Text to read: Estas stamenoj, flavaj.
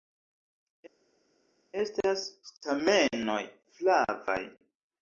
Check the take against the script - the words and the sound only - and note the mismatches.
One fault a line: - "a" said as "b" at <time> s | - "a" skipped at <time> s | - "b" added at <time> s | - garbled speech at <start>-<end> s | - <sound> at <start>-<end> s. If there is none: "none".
none